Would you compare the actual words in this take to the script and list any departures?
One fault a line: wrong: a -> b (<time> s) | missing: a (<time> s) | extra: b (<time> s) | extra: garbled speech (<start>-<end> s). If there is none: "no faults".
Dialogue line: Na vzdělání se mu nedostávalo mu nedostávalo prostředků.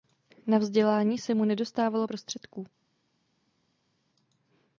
missing: mu nedostávalo (2.1 s)